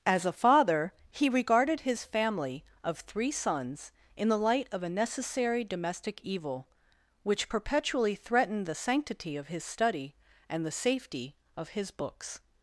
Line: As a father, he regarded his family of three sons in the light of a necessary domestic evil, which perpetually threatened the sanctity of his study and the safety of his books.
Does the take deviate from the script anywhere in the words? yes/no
no